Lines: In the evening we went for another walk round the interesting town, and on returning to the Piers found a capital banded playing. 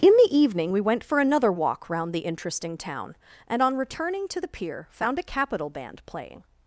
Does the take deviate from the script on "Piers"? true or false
true